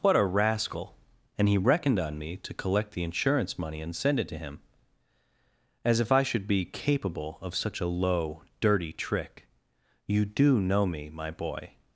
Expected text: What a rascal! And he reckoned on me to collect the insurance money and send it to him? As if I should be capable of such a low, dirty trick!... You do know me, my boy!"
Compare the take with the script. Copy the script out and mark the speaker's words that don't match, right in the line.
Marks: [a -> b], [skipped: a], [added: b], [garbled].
What a rascal! And he reckoned on me to collect the insurance money and send it to him? As if I should be capable of such a low, dirty trick!... You do know me, my boy!"